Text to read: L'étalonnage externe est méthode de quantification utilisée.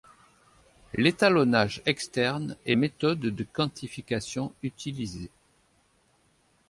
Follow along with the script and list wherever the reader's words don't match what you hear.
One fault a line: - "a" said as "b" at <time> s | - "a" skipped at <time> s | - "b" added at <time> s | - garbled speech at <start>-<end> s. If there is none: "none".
none